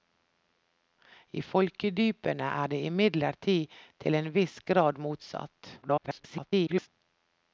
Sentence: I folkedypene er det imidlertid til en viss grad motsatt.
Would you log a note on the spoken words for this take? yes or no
yes